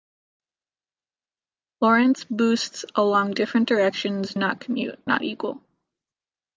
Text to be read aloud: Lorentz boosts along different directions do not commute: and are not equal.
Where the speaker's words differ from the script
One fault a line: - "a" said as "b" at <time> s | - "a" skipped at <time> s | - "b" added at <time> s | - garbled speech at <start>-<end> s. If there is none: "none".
- "do" skipped at 4.3 s
- "and are" skipped at 5.0 s